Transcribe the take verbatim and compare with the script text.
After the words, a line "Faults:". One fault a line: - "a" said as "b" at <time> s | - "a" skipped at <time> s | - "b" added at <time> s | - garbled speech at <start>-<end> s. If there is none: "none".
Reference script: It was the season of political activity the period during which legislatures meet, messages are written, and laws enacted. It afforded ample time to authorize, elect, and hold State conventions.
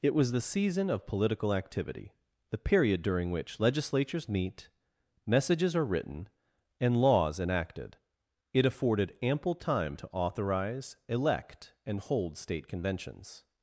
It was the season of political activity the period during which legislatures meet, messages are written, and laws enacted. It afforded ample time to authorize, elect, and hold State conventions.
Faults:
none